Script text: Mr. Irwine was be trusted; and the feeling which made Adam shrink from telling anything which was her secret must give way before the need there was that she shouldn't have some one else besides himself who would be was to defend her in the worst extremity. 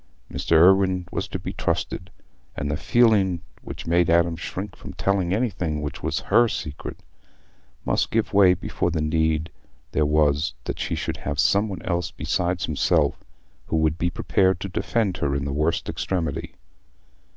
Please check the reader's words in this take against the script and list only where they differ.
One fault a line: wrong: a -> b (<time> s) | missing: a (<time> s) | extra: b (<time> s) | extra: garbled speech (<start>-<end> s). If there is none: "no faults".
extra: to (1.3 s)
wrong: shouldn't -> should (10.9 s)
wrong: was -> prepared (14.1 s)